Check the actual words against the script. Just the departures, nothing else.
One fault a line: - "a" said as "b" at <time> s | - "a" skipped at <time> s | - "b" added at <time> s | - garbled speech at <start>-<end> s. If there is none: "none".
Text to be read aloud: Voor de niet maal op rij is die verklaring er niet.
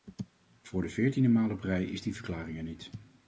- "niet" said as "veertiende" at 0.9 s